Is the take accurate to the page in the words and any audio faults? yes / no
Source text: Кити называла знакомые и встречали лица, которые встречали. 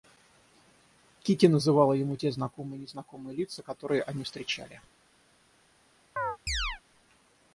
no